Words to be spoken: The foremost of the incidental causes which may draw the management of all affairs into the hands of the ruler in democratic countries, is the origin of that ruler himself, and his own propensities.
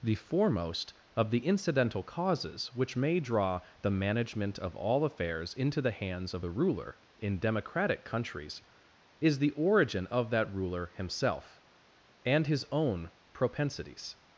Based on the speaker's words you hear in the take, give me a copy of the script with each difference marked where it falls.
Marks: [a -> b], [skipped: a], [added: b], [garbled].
The foremost of the incidental causes which may draw the management of all affairs into the hands of the ruler in democratic countries, is the origin of that ruler himself, and his own propensities.